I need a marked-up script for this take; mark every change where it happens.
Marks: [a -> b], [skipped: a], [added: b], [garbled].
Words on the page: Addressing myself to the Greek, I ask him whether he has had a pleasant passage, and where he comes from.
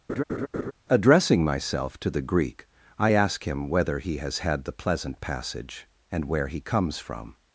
Addressing myself to the Greek, I ask him whether he has had [a -> the] pleasant passage, and where he comes from.